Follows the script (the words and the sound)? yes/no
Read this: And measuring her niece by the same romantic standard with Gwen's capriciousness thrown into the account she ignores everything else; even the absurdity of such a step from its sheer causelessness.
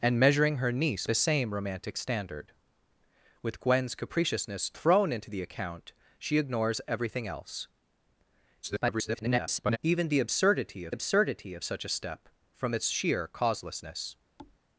no